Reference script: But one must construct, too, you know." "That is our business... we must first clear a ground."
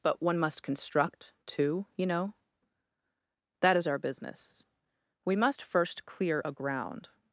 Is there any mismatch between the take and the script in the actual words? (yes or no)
no